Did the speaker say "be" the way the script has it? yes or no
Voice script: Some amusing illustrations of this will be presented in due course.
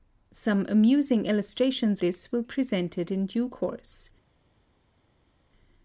no